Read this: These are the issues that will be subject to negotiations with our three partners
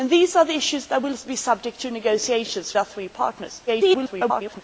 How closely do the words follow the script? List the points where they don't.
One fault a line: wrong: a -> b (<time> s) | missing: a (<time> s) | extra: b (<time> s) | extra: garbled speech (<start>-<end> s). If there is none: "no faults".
missing: with (2.8 s)
extra: garbled speech (3.7-4.6 s)